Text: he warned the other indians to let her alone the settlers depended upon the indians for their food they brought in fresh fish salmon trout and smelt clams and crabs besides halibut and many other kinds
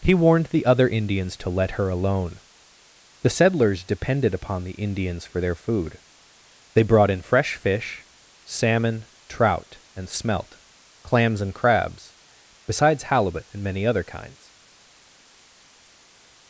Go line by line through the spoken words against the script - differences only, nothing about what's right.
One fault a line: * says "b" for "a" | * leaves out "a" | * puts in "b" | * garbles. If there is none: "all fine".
all fine